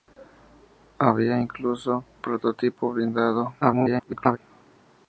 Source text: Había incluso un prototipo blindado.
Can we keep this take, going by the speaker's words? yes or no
no